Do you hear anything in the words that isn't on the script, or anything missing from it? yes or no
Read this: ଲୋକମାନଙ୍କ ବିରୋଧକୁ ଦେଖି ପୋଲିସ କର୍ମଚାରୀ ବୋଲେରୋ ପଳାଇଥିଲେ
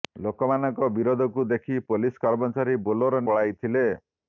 no